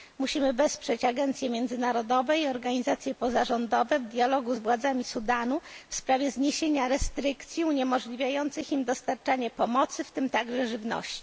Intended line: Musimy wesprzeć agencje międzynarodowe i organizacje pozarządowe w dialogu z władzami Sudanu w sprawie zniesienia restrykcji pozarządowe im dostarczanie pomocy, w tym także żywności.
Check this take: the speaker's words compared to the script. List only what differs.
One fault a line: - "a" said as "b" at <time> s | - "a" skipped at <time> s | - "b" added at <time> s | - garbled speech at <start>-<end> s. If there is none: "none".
- "pozarządowe" said as "uniemożliwiających" at 7.6 s